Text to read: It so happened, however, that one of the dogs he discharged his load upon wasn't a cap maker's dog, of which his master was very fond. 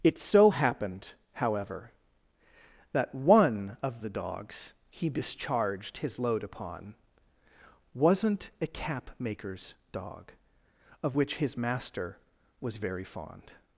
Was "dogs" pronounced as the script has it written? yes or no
yes